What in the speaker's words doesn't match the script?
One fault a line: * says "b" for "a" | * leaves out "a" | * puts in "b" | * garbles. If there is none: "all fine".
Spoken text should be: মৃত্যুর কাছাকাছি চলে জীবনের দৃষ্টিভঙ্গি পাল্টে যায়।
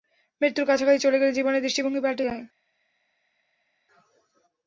* puts in "গেলে"